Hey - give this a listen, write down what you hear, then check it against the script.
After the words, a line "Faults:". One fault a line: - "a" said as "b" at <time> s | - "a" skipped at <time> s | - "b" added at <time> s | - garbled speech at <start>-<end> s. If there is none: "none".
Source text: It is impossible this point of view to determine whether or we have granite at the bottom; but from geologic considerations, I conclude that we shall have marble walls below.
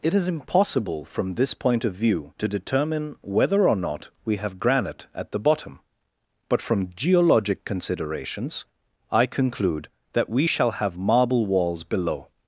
It is impossible from this point of view to determine whether or not we have granite at the bottom; but from geologic considerations, I conclude that we shall have marble walls below.
Faults:
- "from" added at 1.1 s
- "not" added at 3.8 s